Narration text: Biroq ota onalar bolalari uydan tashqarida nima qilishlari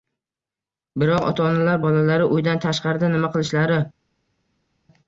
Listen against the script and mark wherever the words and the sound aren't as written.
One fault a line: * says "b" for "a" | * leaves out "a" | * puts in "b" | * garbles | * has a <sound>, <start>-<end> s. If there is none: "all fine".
all fine